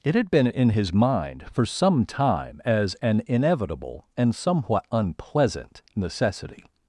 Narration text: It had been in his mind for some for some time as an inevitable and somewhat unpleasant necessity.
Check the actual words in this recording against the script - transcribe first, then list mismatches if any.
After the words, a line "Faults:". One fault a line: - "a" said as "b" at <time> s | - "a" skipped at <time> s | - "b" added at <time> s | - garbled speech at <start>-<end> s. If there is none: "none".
It had been in his mind for some time as an inevitable and somewhat unpleasant necessity.
Faults:
- "for some" skipped at 2.1 s